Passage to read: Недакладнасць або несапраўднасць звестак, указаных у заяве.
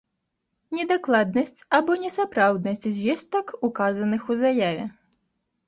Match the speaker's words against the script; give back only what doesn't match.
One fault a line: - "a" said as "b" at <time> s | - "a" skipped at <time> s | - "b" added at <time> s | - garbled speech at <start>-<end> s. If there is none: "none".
none